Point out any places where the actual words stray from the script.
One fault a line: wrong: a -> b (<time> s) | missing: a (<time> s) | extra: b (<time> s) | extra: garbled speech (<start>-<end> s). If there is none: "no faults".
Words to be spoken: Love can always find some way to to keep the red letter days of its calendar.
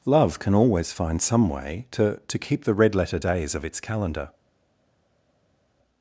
no faults